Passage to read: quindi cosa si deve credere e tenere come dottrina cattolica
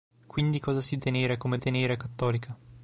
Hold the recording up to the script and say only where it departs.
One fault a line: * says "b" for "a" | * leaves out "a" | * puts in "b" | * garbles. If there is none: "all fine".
* leaves out "deve credere"
* says "tenere" for "dottrina"